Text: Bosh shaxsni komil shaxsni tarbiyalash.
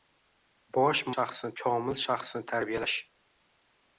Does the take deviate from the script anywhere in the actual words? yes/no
no